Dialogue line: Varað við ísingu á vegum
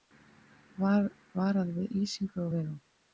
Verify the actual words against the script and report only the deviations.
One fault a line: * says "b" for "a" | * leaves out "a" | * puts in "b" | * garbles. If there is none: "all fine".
all fine